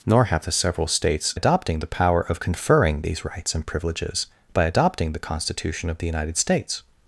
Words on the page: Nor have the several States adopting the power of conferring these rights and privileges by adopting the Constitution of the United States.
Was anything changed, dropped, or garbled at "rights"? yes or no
no